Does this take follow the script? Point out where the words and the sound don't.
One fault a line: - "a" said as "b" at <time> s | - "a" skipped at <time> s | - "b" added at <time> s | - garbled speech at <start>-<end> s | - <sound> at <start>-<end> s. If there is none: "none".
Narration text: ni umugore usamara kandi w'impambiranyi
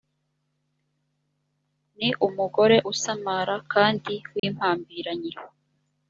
- dropout at 4.4-4.4 s